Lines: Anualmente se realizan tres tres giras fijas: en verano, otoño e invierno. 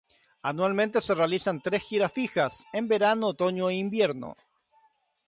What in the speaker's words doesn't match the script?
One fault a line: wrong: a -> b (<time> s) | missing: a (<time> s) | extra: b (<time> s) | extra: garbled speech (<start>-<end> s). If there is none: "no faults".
missing: tres (1.8 s)